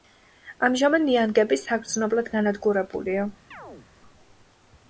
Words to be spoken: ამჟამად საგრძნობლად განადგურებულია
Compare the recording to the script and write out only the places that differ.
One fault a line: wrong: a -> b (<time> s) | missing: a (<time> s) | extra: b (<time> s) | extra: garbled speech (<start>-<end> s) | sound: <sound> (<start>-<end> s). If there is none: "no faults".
extra: ნიანგები (1.1 s)
sound: chirp (3.5-3.9 s)